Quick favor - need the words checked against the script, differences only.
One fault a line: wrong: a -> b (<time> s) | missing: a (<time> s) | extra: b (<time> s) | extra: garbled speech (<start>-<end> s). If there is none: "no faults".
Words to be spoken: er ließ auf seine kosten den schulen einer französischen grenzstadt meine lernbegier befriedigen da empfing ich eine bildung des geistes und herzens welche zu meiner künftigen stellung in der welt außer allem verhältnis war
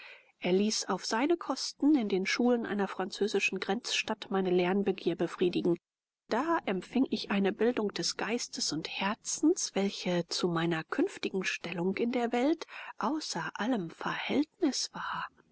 extra: in (1.9 s)